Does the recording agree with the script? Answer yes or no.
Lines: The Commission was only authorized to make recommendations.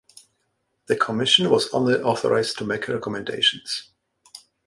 yes